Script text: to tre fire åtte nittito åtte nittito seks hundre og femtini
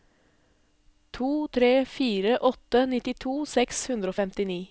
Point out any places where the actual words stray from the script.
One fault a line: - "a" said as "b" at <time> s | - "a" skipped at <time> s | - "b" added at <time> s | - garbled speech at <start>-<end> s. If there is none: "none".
- "åtte nittito" skipped at 3.4 s